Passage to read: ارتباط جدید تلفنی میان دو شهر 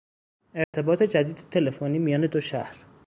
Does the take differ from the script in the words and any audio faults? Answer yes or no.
yes